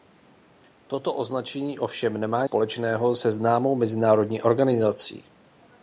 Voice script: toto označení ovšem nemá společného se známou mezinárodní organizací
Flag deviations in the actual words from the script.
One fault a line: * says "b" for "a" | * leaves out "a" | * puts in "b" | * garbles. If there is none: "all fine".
all fine